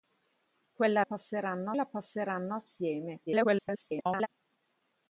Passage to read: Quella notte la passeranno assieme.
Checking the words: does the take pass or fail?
fail